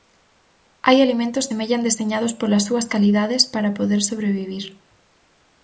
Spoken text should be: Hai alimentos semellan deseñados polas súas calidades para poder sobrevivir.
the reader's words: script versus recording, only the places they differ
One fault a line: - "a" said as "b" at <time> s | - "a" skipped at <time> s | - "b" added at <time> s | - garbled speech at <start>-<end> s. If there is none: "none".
none